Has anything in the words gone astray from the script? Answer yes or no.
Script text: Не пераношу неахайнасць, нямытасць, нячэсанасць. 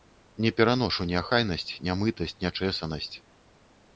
no